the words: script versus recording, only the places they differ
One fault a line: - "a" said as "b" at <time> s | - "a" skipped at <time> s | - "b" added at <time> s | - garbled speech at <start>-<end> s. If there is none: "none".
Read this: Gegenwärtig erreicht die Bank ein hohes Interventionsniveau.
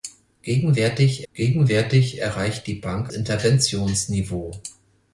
- "gegenwärtig" added at 1.3 s
- "ein hohes" skipped at 3.1 s